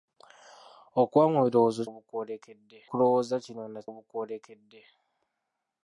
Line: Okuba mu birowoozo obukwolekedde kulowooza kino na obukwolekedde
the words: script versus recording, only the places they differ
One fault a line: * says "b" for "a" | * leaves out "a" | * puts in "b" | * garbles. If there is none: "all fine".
all fine